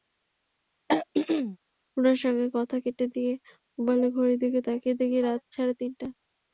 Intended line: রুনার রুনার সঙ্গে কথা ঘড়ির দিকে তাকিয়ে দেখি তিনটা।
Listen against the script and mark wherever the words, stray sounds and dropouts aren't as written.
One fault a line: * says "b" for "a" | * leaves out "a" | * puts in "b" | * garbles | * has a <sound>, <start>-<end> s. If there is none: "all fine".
* has a throat clearing, 0.9-1.6 s
* leaves out "রুনার"
* puts in "কেটে দিয়ে মোবাইলের"
* puts in "রাত সাড়ে"